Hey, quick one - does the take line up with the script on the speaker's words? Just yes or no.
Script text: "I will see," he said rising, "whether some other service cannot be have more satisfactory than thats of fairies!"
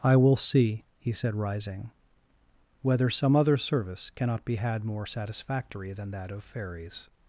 no